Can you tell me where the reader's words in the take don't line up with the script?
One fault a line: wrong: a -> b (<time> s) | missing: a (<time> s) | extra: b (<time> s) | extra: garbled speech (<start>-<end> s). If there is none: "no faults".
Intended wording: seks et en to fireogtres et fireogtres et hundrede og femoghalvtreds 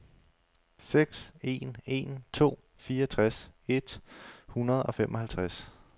wrong: et -> en (1.4 s)
missing: fireogtres et (4.0 s)